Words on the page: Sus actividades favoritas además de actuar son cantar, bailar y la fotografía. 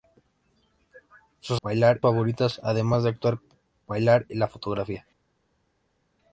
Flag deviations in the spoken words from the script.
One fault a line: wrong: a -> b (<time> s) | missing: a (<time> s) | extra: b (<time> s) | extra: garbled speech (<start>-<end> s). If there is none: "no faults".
wrong: actividades -> bailar (1.6 s)
missing: son cantar (3.4 s)